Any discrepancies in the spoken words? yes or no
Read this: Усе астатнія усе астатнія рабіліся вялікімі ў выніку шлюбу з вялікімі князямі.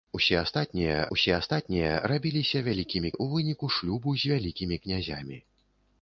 no